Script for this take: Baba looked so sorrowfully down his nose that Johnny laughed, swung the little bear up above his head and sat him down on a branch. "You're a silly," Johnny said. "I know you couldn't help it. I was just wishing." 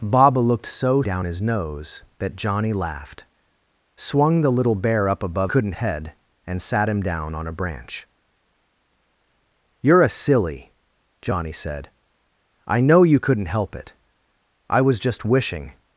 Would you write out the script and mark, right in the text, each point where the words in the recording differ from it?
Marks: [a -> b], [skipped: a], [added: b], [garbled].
Baba looked so [skipped: sorrowfully] down his nose that Johnny laughed, swung the little bear up above [his -> couldn't] head and sat him down on a branch. "You're a silly," Johnny said. "I know you couldn't help it. I was just wishing."